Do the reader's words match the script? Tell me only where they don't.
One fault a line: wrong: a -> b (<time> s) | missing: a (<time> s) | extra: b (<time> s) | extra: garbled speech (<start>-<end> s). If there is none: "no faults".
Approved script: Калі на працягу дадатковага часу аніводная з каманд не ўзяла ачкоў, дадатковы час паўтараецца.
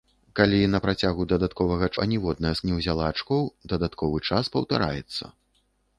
missing: часу (1.9 s)
missing: каманд (2.6 s)